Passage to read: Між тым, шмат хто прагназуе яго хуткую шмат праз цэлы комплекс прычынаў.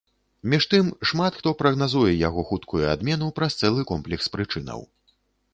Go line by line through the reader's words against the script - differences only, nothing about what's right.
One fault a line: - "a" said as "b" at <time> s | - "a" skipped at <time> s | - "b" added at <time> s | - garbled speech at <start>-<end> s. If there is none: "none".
- "шмат" said as "адмену" at 3.0 s